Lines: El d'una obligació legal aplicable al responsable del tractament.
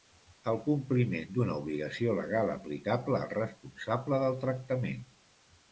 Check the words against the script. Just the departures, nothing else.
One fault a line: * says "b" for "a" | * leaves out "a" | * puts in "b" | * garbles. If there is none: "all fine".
* puts in "compliment"